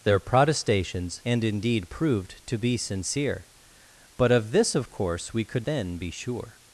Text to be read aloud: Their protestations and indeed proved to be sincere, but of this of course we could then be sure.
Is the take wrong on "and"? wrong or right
right